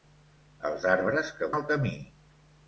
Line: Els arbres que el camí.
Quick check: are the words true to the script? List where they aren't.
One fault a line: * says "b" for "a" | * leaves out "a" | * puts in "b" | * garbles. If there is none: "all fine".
all fine